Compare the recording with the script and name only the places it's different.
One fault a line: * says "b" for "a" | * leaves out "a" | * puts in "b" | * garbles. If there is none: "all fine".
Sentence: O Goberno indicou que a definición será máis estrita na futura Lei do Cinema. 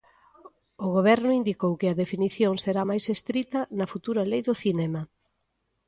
all fine